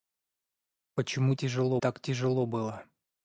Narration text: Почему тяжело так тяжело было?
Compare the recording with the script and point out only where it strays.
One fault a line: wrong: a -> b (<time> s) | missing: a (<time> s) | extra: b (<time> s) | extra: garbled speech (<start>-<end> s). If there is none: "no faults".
no faults